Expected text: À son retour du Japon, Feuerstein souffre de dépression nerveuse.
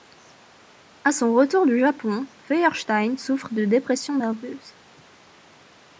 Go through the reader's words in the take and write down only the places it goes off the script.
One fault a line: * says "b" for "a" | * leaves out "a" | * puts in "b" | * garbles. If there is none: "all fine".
all fine